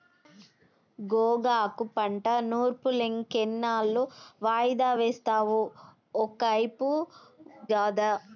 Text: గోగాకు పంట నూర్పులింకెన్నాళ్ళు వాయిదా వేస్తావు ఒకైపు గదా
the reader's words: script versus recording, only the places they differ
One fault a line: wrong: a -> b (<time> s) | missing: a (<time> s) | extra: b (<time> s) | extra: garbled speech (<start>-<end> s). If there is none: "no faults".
no faults